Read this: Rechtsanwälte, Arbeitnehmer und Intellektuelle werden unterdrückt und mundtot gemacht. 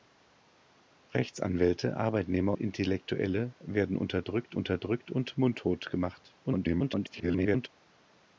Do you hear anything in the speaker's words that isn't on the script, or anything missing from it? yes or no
yes